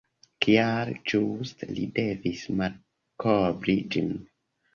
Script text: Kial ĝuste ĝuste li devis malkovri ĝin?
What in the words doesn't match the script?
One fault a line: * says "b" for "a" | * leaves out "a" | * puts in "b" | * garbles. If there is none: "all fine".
* leaves out "ĝuste"